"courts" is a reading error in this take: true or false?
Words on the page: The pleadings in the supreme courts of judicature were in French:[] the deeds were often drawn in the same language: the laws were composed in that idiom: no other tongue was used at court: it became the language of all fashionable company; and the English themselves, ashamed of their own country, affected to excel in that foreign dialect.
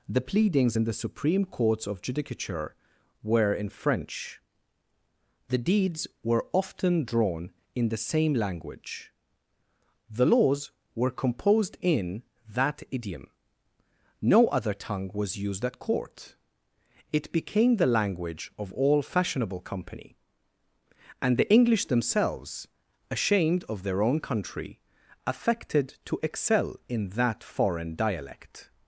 false